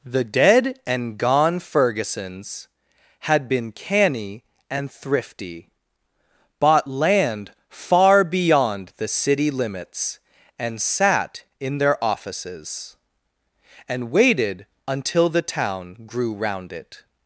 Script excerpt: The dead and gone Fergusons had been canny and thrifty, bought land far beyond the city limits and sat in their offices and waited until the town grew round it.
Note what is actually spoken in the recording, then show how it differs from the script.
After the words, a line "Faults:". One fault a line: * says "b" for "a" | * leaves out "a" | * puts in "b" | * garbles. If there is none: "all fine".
The dead and gone Fergusons had been canny and thrifty, bought land far beyond the city limits and sat in their offices and waited until the town grew round it.
Faults:
all fine